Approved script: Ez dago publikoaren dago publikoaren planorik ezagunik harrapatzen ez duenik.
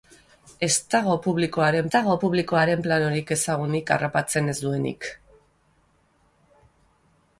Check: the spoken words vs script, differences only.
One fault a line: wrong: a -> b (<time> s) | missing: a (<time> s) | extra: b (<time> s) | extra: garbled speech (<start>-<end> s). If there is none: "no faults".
no faults